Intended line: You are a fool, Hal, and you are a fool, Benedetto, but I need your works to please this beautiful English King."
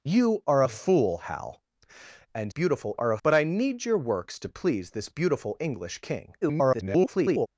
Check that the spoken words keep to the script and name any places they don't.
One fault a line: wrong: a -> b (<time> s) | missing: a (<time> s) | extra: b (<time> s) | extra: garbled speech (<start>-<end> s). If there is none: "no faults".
wrong: you -> beautiful (2.5 s)
missing: fool Benedetto (3.2 s)
extra: garbled speech (6.4-7.5 s)